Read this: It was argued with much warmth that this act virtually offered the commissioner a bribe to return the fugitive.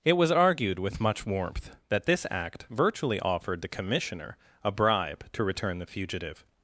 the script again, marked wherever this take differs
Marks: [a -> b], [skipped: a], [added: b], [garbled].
It was argued with much warmth that this act virtually offered the commissioner a bribe to return the fugitive.